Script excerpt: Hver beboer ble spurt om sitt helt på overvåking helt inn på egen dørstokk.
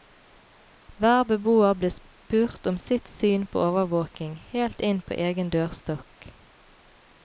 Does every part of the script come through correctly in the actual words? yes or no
no